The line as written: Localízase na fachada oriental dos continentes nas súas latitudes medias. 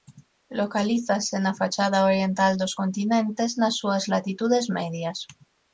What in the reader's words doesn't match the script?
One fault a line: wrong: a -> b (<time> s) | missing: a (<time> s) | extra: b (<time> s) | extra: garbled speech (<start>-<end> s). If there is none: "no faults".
no faults